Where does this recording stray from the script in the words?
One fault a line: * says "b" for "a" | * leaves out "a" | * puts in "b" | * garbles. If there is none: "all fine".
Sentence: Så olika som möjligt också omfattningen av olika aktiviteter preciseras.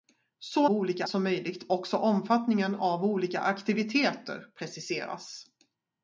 all fine